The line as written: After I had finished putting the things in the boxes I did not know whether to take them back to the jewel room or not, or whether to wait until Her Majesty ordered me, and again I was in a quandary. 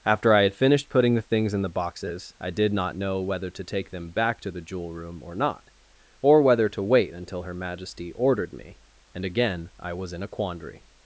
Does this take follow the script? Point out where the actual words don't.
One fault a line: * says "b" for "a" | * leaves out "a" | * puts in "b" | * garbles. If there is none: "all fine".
all fine